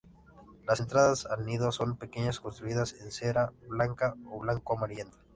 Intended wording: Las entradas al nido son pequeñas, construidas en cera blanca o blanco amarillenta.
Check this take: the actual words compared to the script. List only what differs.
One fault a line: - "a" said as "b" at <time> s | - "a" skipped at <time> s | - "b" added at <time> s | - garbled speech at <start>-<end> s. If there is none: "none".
none